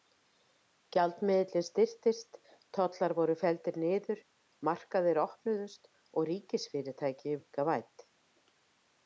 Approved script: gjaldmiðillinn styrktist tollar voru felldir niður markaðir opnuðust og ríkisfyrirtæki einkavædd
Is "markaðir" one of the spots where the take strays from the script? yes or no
no